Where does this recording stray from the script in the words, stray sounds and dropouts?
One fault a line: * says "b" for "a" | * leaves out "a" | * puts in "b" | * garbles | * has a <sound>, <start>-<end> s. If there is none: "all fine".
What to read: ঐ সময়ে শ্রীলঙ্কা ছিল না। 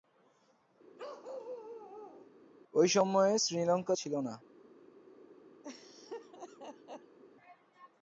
* has a bark, 1.0-2.3 s
* has a laugh, 5.6-7.2 s